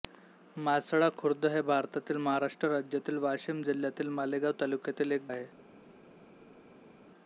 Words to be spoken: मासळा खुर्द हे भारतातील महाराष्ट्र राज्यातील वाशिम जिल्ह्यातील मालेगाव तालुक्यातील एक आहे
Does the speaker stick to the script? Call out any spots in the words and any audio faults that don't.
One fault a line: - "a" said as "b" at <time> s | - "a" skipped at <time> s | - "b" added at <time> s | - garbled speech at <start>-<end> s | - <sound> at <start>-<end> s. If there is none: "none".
none